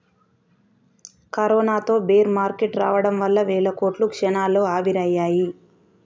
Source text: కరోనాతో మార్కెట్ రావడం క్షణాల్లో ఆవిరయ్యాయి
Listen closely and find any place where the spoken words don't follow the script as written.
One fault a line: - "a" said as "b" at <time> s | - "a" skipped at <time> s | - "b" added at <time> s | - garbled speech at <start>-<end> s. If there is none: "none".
- "బేర్" added at 2.1 s
- "వల్ల వేల కోట్లు" added at 3.2 s